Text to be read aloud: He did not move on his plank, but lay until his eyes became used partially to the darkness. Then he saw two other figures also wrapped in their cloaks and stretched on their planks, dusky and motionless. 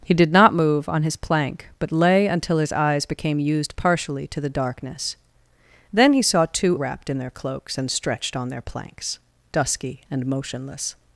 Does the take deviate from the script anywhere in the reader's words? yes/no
yes